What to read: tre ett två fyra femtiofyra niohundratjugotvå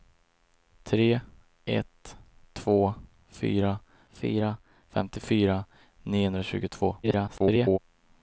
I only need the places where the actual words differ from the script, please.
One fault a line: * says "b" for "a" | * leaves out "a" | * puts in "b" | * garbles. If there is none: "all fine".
* puts in "fyra"
* garbles